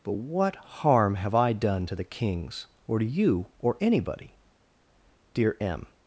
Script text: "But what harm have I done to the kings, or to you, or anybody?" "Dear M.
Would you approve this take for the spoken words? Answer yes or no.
yes